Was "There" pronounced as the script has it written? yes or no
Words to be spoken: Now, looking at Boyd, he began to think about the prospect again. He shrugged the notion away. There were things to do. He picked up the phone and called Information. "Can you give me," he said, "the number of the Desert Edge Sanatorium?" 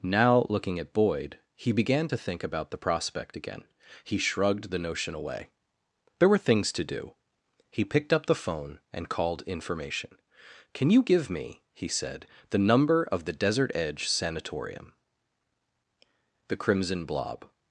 yes